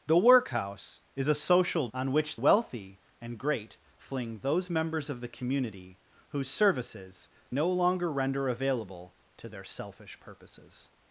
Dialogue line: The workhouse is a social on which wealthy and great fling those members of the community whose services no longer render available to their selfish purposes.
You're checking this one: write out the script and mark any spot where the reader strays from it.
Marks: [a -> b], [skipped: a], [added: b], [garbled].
The workhouse is a social on which wealthy and great fling those members of the community whose services no longer render available to their selfish purposes.